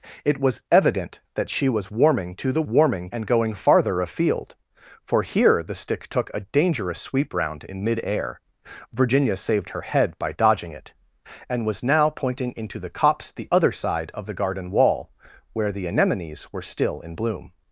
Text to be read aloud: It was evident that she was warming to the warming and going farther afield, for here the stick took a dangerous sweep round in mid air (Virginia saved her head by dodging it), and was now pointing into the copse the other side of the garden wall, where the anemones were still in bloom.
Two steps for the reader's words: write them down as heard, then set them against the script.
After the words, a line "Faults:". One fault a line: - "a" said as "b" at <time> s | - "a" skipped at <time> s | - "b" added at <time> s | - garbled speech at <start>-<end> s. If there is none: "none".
It was evident that she was warming to the warming and going farther afield, for here the stick took a dangerous sweep round in mid air (Virginia saved her head by dodging it), and was now pointing into the copse the other side of the garden wall, where the anemones were still in bloom.
Faults:
none